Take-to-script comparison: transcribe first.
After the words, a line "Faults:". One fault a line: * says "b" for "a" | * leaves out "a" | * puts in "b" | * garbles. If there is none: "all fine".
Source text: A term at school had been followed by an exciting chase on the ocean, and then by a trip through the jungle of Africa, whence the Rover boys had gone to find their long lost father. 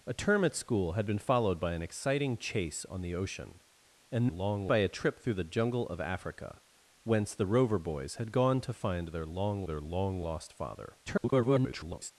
A term at school had been followed by an exciting chase on the ocean, and long by a trip through the jungle of Africa, whence the Rover boys had gone to find their long their long lost father. [garbled]
Faults:
* says "long" for "then"
* puts in "their long"
* garbles